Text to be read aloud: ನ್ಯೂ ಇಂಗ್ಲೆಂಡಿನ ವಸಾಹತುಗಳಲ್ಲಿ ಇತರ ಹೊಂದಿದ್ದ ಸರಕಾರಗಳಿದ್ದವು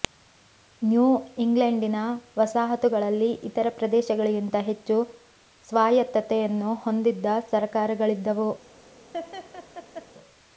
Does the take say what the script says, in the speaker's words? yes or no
no